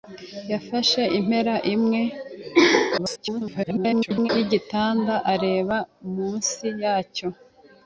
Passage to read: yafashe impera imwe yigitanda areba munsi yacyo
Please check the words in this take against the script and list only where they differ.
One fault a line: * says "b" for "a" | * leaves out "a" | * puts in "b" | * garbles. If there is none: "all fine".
* garbles